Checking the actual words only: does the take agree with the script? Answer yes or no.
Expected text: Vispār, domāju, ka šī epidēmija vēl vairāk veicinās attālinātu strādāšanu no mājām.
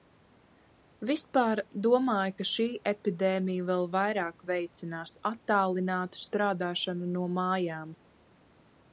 yes